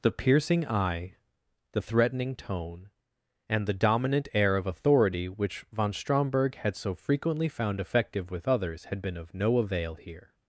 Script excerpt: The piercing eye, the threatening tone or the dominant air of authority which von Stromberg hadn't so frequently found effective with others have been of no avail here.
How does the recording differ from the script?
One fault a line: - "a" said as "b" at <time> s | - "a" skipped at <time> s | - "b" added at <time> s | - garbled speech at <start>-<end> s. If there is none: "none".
- "or" said as "and" at 3.5 s
- "hadn't" said as "had" at 6.6 s
- "have" said as "had" at 8.9 s